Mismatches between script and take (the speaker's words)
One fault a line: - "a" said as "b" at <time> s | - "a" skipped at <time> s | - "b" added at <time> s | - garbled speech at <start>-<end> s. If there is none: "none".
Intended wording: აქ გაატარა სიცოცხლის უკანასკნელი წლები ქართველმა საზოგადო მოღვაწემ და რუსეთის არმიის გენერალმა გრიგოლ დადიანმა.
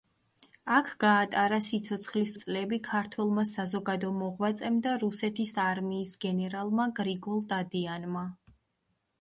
- "უკანასკნელი" skipped at 2.3 s